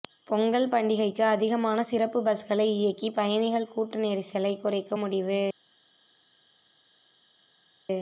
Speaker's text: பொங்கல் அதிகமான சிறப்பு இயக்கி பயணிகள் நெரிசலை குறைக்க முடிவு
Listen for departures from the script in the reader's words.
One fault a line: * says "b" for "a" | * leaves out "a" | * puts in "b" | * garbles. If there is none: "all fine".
* puts in "பண்டிகைக்கு"
* puts in "பஸ்களை"
* puts in "கூட்ட"